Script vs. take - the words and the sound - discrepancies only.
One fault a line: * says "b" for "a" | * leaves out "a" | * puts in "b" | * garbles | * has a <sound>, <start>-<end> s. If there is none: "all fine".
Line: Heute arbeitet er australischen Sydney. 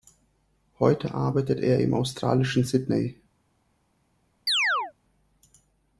* puts in "im"
* has a chirp, 4.5-4.9 s